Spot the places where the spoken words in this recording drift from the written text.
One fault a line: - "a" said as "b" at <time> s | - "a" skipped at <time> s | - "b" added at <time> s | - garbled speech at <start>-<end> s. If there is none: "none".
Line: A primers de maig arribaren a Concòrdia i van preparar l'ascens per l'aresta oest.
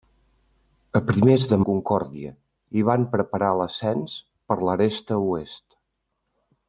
- "maig arribaren" skipped at 1.6 s